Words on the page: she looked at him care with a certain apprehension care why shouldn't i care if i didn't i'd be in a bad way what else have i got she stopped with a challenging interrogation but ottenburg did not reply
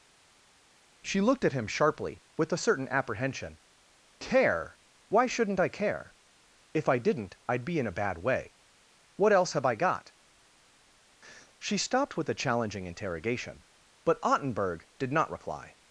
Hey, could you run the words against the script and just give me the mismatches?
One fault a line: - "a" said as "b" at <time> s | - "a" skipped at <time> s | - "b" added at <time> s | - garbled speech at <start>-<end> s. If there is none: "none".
- "care" said as "sharply" at 1.7 s